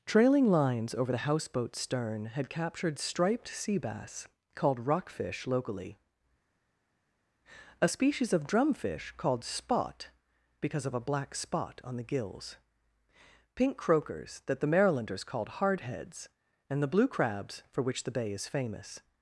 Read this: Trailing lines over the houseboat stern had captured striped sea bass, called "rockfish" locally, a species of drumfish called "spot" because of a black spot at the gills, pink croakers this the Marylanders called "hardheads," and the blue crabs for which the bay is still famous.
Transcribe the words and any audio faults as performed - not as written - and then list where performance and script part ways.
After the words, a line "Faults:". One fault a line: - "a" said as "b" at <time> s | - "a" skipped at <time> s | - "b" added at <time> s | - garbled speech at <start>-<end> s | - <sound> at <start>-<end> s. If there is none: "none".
Trailing lines over the houseboat stern had captured striped sea bass, called "rockfish" locally, a species of drumfish called "spot" because of a black spot on the gills, pink croakers that the Marylanders called "hardheads," and the blue crabs for which the bay is famous.
Faults:
- "at" said as "on" at 11.8 s
- "this" said as "that" at 14.5 s
- "still" skipped at 18.5 s